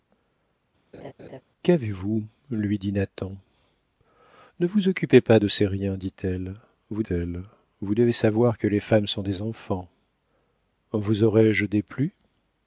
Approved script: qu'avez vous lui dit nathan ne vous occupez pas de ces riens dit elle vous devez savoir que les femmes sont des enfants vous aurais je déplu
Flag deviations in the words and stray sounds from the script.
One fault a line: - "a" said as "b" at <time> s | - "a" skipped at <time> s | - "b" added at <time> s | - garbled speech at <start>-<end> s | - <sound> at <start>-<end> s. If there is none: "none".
- laugh at 0.9-1.4 s
- "elle vous" added at 7.1 s